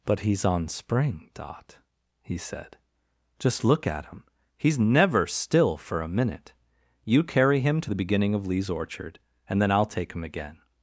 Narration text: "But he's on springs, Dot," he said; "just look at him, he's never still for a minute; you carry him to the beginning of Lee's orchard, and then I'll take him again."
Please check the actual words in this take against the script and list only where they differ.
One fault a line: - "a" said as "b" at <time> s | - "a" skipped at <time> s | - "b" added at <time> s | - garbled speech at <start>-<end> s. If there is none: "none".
- "springs" said as "spring" at 0.7 s